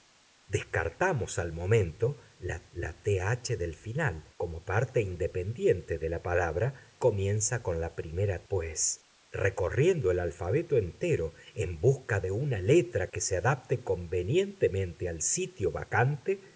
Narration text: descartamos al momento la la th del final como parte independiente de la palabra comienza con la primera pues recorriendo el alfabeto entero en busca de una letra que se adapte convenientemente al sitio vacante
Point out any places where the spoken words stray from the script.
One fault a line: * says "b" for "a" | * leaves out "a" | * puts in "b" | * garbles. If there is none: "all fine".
all fine